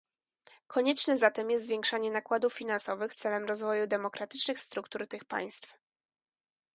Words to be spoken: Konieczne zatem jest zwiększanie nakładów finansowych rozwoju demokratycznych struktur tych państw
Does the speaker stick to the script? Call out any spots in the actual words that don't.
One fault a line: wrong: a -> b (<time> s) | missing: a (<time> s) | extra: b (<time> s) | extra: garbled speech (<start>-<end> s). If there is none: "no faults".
extra: celem (3.1 s)